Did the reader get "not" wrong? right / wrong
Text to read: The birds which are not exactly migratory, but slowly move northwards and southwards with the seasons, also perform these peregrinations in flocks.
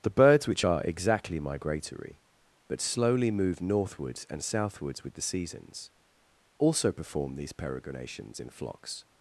wrong